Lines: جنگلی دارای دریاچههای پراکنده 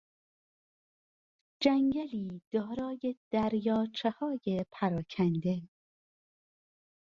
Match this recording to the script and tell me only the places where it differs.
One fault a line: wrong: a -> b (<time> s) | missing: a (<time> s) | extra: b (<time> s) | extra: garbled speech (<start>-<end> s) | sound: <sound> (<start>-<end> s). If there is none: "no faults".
no faults